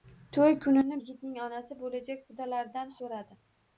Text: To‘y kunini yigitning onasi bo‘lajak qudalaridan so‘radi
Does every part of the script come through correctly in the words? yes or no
yes